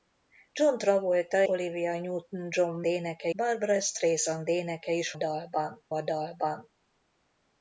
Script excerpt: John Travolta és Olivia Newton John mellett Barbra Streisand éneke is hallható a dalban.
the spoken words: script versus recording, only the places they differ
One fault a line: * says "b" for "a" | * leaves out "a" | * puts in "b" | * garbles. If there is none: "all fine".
* leaves out "és"
* says "éneke" for "mellett"
* says "dalban" for "hallható"